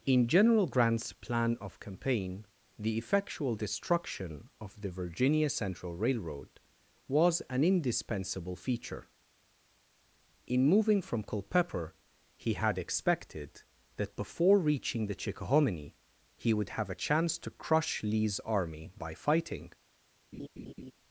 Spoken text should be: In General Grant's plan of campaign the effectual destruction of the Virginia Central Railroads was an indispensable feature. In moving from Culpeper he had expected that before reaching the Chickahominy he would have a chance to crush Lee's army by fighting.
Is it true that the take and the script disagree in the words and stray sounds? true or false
true